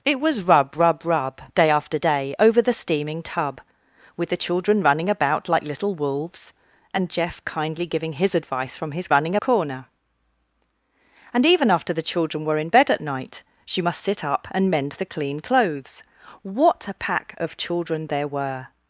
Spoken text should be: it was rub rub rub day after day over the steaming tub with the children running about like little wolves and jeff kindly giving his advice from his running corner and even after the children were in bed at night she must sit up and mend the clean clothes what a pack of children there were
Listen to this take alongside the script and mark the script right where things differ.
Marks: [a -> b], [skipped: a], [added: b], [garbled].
it was rub rub rub day after day over the steaming tub with the children running about like little wolves and jeff kindly giving his advice from his running corner and even after the children were in bed at night she must sit up and mend the clean clothes what a pack of children there were